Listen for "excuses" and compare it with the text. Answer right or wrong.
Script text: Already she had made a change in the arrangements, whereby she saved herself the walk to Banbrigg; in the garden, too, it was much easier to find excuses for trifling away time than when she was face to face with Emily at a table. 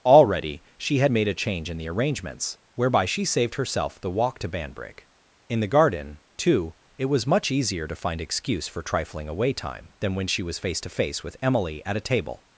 wrong